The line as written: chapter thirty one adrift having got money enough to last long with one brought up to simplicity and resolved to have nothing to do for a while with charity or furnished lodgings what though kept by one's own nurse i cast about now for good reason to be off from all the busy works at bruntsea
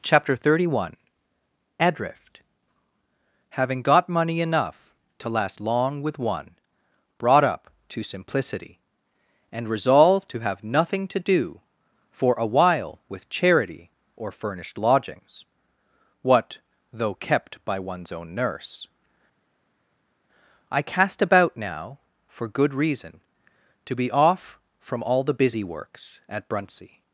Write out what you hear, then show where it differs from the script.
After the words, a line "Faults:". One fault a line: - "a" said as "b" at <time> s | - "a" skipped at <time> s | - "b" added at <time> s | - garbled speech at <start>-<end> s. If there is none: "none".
chapter thirty one adrift having got money enough to last long with one brought up to simplicity and resolved to have nothing to do for a while with charity or furnished lodgings what though kept by one's own nurse i cast about now for good reason to be off from all the busy works at bruntsea
Faults:
none